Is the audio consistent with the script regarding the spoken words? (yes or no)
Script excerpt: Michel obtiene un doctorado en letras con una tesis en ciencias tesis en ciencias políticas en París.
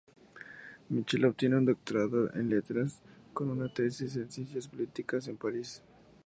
no